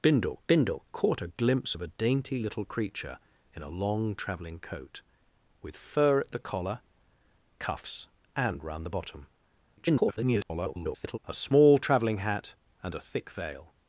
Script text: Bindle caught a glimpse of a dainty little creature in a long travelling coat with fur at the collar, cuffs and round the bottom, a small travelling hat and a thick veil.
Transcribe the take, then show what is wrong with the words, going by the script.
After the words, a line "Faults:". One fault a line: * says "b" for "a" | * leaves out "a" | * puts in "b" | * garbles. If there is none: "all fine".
Bindle bindle caught a glimpse of a dainty little creature in a long travelling coat with fur at the collar, cuffs and round the bottom, [garbled] a small travelling hat and a thick veil.
Faults:
* puts in "bindle"
* garbles